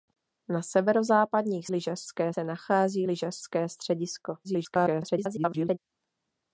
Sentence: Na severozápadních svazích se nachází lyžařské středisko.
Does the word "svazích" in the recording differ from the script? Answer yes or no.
yes